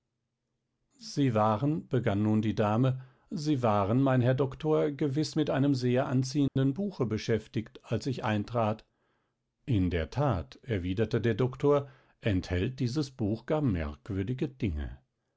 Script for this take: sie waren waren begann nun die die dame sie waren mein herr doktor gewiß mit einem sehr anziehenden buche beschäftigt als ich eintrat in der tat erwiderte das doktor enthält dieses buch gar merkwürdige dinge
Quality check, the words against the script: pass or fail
fail